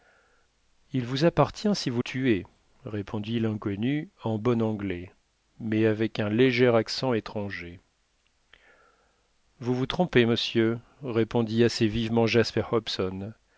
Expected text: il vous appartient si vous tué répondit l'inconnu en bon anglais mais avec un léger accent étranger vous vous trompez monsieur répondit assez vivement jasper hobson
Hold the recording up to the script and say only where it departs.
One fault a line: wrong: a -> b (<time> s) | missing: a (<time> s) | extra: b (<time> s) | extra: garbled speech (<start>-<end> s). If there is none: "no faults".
no faults